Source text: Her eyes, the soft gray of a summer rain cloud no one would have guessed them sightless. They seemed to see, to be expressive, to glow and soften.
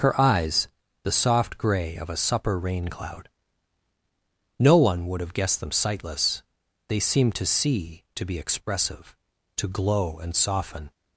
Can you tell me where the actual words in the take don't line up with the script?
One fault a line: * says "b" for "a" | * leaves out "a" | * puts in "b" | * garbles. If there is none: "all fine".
* says "supper" for "summer"